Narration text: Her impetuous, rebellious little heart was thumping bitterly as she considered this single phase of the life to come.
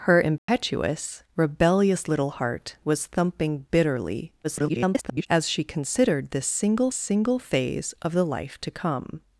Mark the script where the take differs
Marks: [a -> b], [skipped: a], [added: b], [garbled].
Her impetuous, rebellious little heart was thumping bitterly [garbled] as she considered this single [added: single] phase of the life to come.